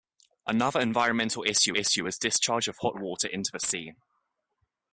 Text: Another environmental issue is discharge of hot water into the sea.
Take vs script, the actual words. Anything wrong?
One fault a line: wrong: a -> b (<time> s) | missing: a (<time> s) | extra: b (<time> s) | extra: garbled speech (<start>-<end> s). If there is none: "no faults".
extra: issue (1.7 s)